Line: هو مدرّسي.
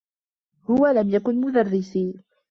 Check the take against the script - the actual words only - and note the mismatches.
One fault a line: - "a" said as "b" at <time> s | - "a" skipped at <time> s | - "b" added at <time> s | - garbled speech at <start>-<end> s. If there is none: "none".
- "لم يكن" added at 0.9 s